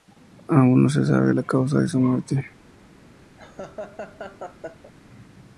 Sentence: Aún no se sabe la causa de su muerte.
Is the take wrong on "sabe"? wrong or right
right